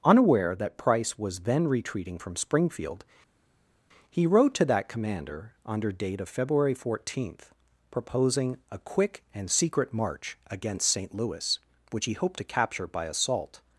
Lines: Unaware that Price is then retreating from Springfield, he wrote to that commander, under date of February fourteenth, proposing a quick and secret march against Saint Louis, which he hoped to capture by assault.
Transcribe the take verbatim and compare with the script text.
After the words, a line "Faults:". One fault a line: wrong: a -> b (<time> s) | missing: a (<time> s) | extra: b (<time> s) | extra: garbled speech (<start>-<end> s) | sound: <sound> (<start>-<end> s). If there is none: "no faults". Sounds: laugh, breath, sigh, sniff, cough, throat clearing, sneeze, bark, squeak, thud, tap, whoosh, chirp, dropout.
Unaware that Price was then retreating from Springfield, he wrote to that commander, under date of February fourteenth, proposing a quick and secret march against Saint Louis, which he hoped to capture by assault.
Faults:
wrong: is -> was (1.2 s)